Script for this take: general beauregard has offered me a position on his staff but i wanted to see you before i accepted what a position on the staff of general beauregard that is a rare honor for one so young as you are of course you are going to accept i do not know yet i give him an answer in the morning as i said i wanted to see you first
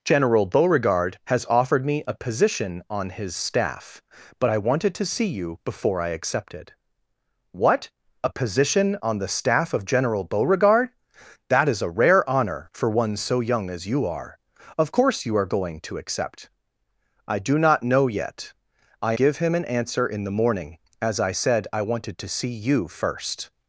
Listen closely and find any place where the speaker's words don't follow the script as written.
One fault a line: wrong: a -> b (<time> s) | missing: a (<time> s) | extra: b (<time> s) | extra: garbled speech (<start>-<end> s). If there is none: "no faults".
no faults